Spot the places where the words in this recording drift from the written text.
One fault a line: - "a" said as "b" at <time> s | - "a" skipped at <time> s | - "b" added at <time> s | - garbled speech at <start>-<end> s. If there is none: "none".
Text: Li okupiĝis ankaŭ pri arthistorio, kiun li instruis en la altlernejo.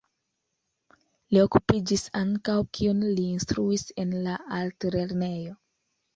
- "pri arthistorio" skipped at 2.5 s